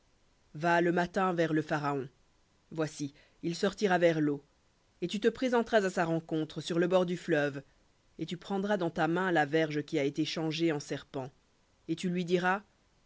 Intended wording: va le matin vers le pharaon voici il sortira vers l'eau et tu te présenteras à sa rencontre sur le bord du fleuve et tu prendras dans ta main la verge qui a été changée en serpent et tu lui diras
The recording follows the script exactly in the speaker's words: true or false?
true